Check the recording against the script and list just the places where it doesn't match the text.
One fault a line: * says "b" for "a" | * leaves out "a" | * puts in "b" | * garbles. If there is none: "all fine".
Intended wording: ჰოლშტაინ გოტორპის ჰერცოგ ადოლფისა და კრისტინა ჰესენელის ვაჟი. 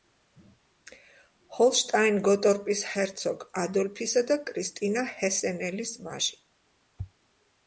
all fine